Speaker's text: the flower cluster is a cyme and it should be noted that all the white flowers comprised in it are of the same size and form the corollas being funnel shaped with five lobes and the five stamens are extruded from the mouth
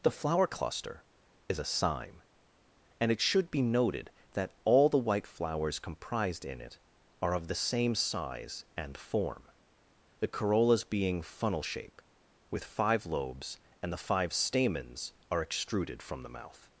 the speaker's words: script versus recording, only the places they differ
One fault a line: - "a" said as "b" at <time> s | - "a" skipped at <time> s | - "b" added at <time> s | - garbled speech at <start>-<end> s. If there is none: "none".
- "shaped" said as "shape" at 11.6 s